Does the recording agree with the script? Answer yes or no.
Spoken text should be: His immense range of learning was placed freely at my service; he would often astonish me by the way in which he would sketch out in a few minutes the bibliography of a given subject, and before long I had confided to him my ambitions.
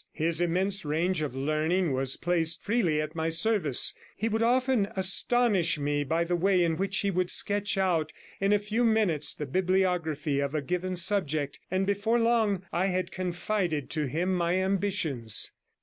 yes